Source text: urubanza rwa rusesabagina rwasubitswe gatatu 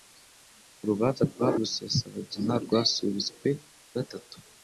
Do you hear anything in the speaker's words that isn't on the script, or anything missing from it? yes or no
no